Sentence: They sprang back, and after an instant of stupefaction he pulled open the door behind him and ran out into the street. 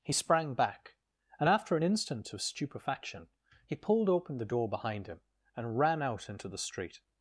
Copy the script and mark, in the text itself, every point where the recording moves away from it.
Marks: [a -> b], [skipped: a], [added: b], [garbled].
[They -> He] sprang back, and after an instant of stupefaction he pulled open the door behind him and ran out into the street.